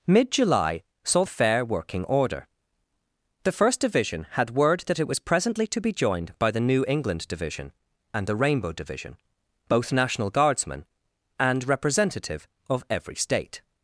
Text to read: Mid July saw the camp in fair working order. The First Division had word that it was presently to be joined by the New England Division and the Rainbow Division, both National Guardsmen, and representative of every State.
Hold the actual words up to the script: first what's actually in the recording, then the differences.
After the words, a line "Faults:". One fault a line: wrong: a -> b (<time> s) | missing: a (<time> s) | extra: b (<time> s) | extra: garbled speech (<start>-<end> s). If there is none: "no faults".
Mid July saw fair working order. The First Division had word that it was presently to be joined by the New England Division and the Rainbow Division, both National Guardsmen, and representative of every State.
Faults:
missing: the camp in (1.2 s)